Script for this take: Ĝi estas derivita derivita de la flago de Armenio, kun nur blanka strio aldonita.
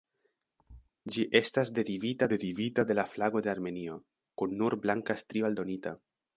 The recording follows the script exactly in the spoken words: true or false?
true